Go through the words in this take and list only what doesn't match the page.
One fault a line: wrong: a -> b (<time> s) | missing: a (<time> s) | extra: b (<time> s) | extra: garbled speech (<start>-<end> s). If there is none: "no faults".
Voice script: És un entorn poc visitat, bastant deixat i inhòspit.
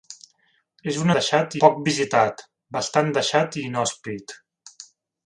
wrong: entorn -> deixat (1.2 s)